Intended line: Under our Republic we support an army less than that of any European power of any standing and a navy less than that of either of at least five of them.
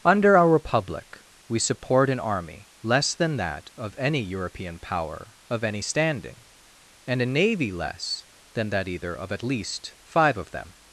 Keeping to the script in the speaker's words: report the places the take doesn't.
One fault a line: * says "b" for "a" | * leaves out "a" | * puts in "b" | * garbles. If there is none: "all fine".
* leaves out "of"